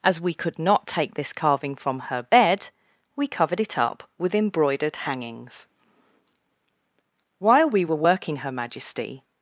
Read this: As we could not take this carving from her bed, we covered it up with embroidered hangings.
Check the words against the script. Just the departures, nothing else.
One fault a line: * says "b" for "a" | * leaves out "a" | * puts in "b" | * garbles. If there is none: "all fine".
* puts in "While we were working Her Majesty"